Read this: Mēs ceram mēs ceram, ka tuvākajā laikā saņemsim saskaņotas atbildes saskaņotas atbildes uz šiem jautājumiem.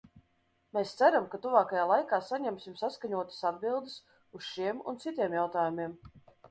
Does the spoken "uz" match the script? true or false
false